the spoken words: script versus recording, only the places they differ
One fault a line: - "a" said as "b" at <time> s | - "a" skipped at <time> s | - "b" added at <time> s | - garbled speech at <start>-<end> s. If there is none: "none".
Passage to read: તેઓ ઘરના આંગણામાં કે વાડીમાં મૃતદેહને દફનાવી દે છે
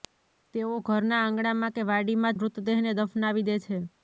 none